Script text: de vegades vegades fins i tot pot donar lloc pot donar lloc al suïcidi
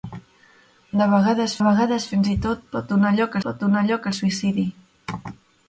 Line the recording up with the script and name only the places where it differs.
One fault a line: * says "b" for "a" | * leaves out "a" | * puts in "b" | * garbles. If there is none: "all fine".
all fine